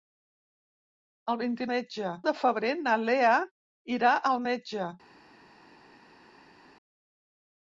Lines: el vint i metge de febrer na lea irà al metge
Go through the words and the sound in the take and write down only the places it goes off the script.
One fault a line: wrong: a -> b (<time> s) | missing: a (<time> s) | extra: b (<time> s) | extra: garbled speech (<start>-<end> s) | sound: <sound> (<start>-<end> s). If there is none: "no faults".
no faults